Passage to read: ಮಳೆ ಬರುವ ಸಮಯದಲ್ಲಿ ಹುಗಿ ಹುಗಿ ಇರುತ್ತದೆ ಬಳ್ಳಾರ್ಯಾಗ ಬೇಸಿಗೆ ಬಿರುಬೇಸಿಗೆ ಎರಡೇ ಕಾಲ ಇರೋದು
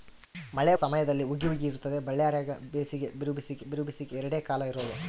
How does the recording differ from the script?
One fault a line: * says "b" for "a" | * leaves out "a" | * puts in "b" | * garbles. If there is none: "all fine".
* leaves out "ಬರುವ"
* puts in "ಬಿರುಬೇಸಿಗೆ"